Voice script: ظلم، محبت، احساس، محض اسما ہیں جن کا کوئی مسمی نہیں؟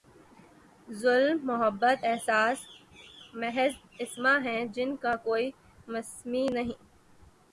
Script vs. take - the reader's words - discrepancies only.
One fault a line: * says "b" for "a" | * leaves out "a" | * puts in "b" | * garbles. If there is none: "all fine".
all fine